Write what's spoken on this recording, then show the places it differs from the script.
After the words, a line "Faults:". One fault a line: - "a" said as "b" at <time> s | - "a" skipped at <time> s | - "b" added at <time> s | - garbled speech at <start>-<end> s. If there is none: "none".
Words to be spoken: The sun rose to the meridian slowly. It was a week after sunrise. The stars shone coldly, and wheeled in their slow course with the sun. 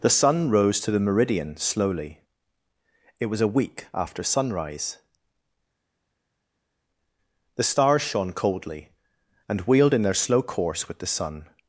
The sun rose to the meridian slowly. It was a week after sunrise. The stars shone coldly, and wheeled in their slow course with the sun.
Faults:
none